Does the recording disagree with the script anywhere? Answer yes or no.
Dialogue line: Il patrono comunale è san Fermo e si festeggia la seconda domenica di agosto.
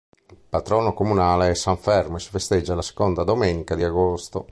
no